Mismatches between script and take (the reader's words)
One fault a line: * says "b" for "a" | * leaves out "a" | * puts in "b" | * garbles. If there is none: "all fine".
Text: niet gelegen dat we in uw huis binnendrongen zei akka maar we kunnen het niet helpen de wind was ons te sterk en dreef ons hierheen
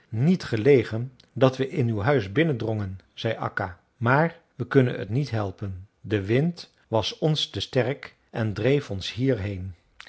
all fine